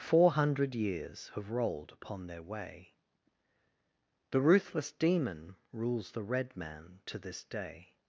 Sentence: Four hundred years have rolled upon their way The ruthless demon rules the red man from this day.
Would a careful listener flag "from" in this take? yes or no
yes